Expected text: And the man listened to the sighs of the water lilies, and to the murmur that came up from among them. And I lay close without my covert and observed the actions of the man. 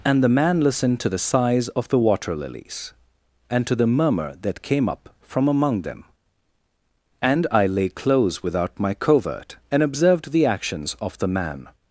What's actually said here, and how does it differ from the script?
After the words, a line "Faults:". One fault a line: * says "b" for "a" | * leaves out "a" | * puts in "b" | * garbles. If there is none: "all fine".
And the man listened to the sighs of the water lilies, and to the murmur that came up from among them. And I lay close without my covert and observed the actions of the man.
Faults:
all fine